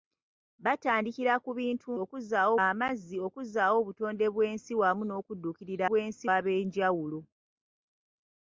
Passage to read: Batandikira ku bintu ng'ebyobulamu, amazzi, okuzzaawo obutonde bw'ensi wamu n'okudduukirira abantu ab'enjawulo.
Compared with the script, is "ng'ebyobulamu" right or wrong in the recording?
wrong